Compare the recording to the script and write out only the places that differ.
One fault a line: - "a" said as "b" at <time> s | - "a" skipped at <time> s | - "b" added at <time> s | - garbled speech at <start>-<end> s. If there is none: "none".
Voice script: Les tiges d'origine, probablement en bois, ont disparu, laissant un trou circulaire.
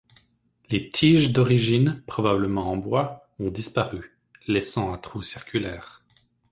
none